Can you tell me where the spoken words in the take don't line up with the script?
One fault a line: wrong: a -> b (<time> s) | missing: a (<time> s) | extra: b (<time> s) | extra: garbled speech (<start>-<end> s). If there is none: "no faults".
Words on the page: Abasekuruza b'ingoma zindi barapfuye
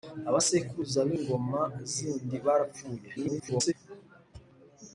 extra: garbled speech (3.2-3.7 s)